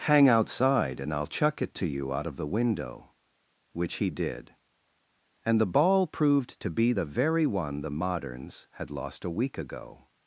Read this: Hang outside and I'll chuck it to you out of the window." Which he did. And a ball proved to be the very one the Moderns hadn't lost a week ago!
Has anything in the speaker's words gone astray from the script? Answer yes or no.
yes